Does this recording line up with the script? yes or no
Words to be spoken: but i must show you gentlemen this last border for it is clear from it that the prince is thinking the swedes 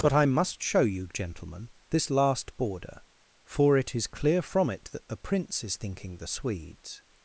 yes